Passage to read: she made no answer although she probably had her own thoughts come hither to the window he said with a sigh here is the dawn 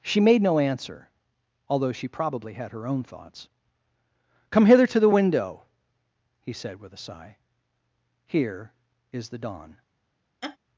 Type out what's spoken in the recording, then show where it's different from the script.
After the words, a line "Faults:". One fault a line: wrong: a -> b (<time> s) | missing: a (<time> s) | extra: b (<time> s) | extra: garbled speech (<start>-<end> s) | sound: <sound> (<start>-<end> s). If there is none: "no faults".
she made no answer although she probably had her own thoughts come hither to the window he said with a sigh here is the dawn
Faults:
sound: laugh (10.4-10.6 s)